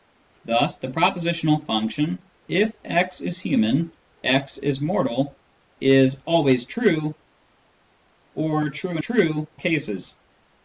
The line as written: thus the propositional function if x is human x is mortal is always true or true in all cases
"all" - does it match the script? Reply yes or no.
no